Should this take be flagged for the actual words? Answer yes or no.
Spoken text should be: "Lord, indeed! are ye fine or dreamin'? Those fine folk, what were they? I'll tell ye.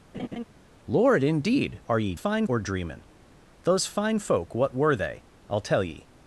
no